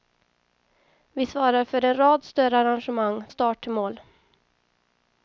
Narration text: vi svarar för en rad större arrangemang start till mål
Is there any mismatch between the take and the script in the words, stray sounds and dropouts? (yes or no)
no